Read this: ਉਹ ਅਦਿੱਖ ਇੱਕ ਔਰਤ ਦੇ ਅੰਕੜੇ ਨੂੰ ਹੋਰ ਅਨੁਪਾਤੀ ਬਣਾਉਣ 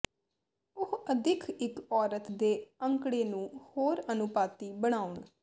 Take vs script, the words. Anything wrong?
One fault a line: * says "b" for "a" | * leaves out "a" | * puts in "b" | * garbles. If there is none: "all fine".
all fine